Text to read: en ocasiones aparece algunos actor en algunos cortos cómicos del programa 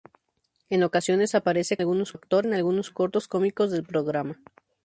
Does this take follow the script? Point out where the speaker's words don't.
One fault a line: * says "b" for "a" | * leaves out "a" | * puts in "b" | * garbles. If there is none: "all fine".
all fine